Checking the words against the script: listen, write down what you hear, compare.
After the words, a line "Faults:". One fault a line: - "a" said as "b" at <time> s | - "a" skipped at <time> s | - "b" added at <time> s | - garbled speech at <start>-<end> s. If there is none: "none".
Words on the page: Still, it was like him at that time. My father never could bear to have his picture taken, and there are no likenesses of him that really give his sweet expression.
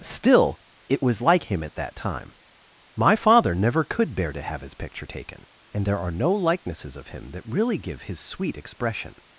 Still, it was like him at that time. My father never could bear to have his picture taken, and there are no likenesses of him that really give his sweet expression.
Faults:
none